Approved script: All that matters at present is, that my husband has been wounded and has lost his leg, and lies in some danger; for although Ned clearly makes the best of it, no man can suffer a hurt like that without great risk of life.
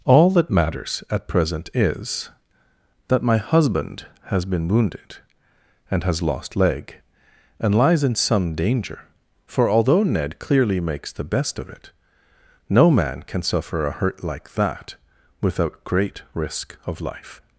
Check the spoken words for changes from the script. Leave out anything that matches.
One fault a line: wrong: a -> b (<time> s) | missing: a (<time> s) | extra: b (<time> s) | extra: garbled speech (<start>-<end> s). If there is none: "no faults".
missing: his (6.5 s)